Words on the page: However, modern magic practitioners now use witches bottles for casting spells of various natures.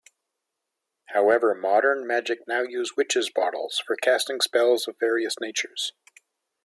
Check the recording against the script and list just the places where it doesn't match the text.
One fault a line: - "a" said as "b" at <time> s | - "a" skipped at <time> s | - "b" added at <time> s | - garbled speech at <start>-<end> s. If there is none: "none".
- "practitioners" skipped at 2.5 s